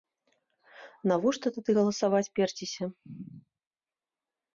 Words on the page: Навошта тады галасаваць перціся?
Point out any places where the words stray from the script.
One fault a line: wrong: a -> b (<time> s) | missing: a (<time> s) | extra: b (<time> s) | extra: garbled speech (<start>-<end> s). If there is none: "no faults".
no faults